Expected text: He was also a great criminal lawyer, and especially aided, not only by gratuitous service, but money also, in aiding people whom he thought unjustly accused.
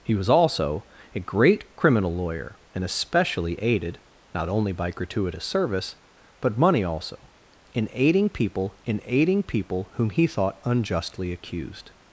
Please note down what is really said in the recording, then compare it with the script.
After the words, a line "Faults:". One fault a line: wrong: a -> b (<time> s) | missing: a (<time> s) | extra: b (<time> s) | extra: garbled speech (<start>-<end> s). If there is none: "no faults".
He was also a great criminal lawyer, and especially aided, not only by gratuitous service, but money also, in aiding people in aiding people whom he thought unjustly accused.
Faults:
extra: in aiding people (8.8 s)